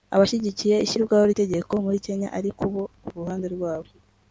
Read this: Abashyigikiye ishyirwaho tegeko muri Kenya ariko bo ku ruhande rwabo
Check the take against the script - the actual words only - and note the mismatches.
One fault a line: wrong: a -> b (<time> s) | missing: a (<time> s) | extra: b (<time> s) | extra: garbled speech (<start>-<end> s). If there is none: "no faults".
no faults